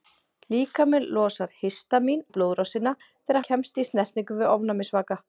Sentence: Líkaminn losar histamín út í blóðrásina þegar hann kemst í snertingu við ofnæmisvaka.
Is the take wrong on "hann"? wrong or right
wrong